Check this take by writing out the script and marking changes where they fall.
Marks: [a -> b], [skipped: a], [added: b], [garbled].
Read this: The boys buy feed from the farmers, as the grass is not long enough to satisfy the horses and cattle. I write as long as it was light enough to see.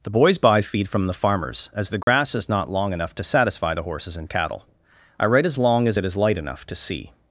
The boys buy feed from the farmers, as the grass is not long enough to satisfy the horses and cattle. I write as long as it [was -> is] light enough to see.